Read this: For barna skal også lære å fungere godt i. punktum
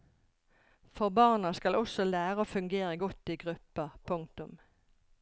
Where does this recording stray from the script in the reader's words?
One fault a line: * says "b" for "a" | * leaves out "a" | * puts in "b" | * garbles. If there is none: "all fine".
* puts in "grupper"